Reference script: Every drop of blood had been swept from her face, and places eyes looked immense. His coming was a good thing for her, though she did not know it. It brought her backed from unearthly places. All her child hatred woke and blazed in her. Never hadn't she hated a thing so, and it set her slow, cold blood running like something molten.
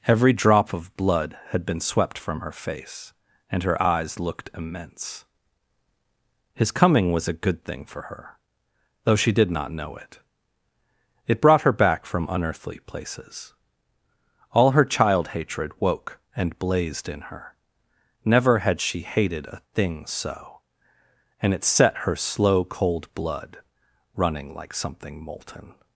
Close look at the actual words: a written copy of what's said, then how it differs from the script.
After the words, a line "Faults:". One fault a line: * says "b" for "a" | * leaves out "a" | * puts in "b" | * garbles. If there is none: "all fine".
Every drop of blood had been swept from her face, and her eyes looked immense. His coming was a good thing for her, though she did not know it. It brought her back from unearthly places. All her child hatred woke and blazed in her. Never had she hated a thing so, and it set her slow, cold blood running like something molten.
Faults:
* says "her" for "places"
* says "back" for "backed"
* says "had" for "hadn't"